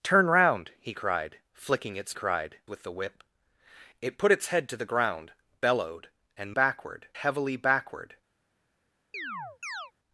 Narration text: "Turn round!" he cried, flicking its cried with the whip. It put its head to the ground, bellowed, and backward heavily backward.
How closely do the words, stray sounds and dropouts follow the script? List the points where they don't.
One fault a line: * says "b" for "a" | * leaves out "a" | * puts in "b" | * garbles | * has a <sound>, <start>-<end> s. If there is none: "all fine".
* has a chirp, 9.1-9.9 s